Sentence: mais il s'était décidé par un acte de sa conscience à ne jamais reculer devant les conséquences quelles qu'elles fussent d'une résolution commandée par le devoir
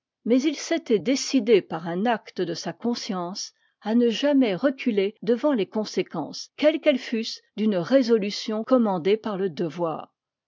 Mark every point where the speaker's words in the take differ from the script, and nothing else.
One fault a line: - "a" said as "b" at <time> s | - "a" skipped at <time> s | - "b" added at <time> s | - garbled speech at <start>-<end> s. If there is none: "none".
none